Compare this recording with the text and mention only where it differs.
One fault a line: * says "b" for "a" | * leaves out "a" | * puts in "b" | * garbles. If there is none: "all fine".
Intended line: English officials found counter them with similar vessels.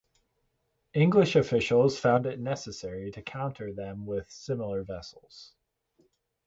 * puts in "it necessary to"